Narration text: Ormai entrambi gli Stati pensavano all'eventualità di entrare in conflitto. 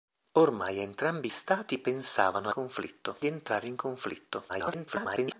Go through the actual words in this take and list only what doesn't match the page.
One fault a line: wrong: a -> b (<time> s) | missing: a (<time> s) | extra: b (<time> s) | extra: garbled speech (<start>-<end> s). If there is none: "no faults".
missing: gli (1.3 s)
wrong: all'eventualità -> conflitto (2.5 s)
extra: garbled speech (4.5-5.4 s)